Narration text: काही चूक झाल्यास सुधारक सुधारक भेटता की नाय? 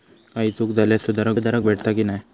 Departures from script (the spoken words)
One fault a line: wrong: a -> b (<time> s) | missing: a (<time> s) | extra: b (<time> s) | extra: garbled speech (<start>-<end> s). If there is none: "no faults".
no faults